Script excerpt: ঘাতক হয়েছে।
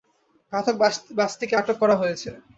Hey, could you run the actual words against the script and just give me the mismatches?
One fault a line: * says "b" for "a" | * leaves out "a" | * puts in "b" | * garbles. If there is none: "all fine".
* puts in "বাসটিকে আটক করা"